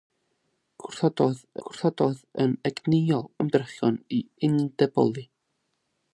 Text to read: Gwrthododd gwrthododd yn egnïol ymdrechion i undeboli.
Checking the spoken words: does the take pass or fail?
pass